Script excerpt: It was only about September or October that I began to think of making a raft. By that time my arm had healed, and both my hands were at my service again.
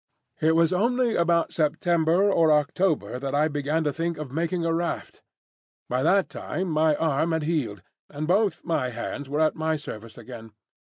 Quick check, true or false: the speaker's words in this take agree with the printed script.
true